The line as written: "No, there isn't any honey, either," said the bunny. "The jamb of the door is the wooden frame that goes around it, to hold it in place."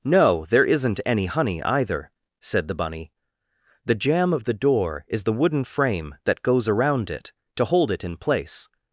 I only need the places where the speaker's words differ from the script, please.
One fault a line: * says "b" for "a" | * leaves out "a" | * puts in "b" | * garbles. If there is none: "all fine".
all fine